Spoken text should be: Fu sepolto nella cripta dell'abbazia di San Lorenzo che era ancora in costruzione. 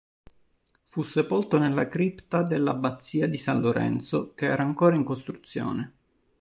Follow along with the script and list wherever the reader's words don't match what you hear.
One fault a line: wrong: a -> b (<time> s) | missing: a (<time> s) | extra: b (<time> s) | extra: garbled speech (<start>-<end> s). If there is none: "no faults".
no faults